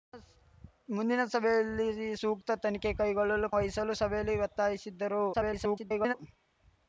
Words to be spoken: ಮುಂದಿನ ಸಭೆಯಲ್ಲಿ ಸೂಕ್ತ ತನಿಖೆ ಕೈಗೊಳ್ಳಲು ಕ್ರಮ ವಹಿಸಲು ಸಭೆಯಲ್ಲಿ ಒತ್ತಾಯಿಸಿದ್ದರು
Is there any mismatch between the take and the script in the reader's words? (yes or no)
yes